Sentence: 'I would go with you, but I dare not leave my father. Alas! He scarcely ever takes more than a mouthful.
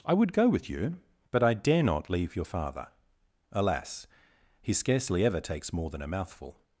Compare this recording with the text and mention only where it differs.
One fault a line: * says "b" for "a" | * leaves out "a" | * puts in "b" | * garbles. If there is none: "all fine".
* says "your" for "my"